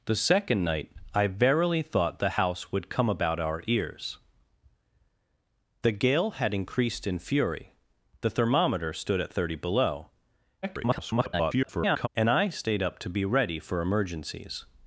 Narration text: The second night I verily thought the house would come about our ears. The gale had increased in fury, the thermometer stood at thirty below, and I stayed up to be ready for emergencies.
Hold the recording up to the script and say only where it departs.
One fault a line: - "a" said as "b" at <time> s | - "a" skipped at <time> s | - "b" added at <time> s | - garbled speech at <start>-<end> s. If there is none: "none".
- garbled speech at 10.6-12.1 s